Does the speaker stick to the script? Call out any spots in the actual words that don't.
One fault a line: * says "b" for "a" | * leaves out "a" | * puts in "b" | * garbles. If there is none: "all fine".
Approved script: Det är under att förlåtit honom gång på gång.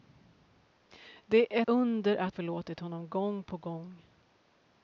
all fine